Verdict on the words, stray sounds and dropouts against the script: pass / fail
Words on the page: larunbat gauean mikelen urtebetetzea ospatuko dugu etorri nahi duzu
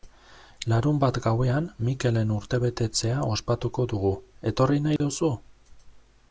fail